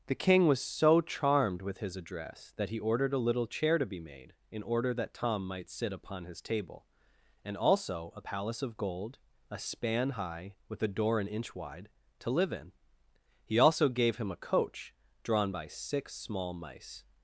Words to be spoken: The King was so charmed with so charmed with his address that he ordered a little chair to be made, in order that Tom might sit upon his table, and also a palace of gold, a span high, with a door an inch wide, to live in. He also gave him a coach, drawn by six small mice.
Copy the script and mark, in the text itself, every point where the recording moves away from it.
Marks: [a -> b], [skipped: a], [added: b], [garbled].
The King was so charmed with [skipped: so charmed with] his address that he ordered a little chair to be made, in order that Tom might sit upon his table, and also a palace of gold, a span high, with a door an inch wide, to live in. He also gave him a coach, drawn by six small mice.